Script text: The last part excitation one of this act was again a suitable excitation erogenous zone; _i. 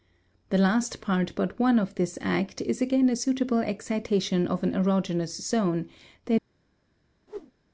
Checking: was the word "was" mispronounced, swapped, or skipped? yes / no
yes